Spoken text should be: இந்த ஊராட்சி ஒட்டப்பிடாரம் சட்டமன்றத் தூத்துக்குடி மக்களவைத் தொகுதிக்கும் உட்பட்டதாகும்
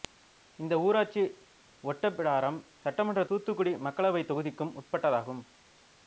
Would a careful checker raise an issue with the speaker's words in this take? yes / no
no